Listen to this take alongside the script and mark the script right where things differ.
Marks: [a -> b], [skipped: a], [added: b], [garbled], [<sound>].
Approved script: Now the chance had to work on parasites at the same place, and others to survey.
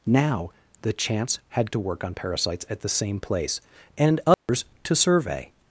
Now the chance had to work on parasites at the same place, and others [dropout] to survey.